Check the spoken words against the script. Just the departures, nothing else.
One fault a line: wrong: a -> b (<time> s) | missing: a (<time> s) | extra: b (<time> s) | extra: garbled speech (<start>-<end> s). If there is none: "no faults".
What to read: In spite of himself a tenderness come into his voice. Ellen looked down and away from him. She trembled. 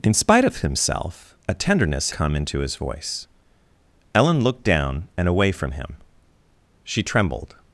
no faults